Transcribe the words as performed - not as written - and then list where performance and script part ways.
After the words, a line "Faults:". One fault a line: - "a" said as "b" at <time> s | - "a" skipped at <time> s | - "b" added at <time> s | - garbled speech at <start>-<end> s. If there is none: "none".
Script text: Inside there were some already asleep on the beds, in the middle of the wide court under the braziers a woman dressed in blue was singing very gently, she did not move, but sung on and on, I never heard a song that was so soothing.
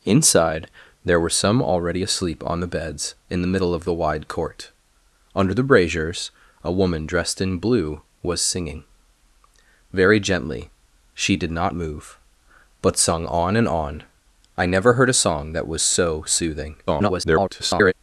Inside there were some already asleep on the beds, in the middle of the wide court under the braziers a woman dressed in blue was singing very gently, she did not move, but sung on and on, I never heard a song that was so soothing. [garbled]
Faults:
- garbled speech at 16.9-17.9 s